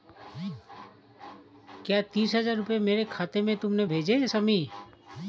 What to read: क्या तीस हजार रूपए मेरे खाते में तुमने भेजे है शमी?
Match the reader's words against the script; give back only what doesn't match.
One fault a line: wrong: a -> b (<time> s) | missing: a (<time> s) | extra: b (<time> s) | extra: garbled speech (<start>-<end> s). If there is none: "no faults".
no faults